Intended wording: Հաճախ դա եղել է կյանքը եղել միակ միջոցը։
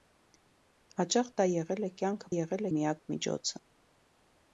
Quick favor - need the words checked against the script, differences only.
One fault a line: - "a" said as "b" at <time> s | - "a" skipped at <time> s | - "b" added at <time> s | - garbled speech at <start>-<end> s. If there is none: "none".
none